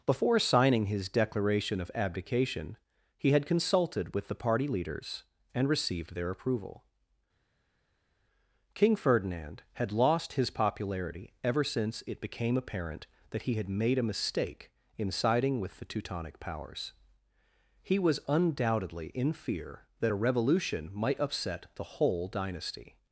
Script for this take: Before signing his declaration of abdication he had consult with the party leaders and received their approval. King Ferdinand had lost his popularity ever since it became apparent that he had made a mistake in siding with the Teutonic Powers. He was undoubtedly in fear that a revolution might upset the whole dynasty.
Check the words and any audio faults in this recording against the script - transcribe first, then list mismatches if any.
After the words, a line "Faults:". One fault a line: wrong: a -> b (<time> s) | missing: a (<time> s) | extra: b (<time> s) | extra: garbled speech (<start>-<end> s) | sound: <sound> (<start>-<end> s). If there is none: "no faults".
Before signing his declaration of abdication he had consulted with the party leaders and received their approval. King Ferdinand had lost his popularity ever since it became apparent that he had made a mistake in siding with the Teutonic Powers. He was undoubtedly in fear that a revolution might upset the whole dynasty.
Faults:
wrong: consult -> consulted (3.5 s)